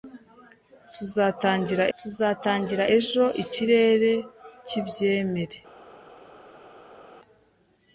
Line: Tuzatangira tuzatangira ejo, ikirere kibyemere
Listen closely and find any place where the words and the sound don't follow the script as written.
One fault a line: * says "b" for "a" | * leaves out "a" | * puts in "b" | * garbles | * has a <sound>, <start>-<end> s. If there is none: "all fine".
all fine